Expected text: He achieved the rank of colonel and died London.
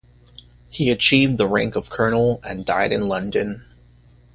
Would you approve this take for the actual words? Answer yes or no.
no